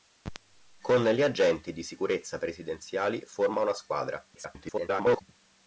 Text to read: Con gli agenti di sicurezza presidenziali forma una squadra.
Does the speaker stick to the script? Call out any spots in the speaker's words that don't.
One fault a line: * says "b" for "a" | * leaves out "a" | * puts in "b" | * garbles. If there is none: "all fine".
* garbles